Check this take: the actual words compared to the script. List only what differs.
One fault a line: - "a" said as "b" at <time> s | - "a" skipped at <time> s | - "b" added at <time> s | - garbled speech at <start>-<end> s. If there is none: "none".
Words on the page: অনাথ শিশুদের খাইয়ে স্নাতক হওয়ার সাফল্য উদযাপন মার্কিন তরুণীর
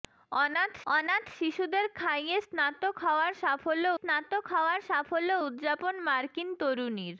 - "অনাথ" added at 0.9 s
- "স্নাতক হওয়ার সাফল্য" added at 4.0 s